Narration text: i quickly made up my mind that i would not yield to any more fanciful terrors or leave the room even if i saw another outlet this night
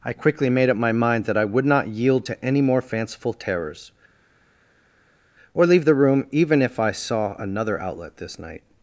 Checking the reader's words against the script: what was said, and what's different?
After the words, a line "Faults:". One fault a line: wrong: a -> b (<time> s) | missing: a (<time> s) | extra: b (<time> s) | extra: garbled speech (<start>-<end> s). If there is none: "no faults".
i quickly made up my mind that i would not yield to any more fanciful terrors or leave the room even if i saw another outlet this night
Faults:
no faults